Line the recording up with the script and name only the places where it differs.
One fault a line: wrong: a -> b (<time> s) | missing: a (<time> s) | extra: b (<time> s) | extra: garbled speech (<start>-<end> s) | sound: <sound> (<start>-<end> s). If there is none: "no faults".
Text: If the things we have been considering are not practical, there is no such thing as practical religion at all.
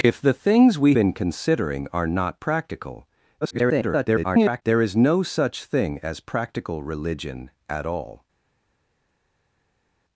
missing: have (0.9 s)
extra: garbled speech (3.4-4.6 s)